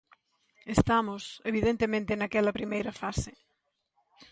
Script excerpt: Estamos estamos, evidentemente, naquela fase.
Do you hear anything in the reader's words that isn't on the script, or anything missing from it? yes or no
yes